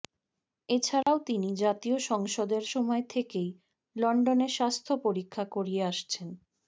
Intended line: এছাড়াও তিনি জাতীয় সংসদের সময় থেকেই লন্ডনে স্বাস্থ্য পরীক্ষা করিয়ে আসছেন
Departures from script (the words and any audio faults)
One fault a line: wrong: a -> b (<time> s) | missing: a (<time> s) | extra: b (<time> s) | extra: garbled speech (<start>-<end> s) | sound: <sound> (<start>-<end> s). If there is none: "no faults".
sound: dropout (1.0-1.1 s)